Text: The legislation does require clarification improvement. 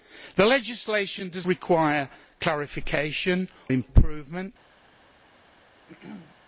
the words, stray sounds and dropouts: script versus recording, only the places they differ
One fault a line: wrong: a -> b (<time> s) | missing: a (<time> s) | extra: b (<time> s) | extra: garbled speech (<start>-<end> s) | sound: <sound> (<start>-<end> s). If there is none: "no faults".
sound: throat clearing (5.9-6.4 s)